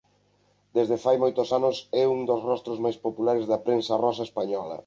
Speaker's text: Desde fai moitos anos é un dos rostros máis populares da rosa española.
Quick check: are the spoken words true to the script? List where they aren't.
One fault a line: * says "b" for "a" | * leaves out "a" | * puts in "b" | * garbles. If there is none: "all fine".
* puts in "prensa"